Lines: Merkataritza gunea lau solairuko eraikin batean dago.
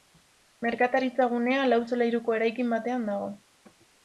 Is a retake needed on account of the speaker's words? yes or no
no